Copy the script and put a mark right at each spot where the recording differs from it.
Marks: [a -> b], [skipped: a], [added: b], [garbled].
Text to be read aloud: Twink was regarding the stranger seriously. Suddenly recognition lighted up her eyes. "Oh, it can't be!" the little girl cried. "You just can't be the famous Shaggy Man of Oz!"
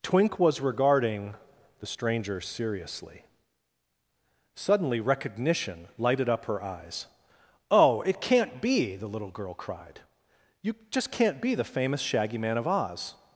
Twink was regarding the stranger seriously. Suddenly recognition lighted up her eyes. "Oh, it can't be!" the little girl cried. "You just can't be the famous Shaggy Man of Oz!"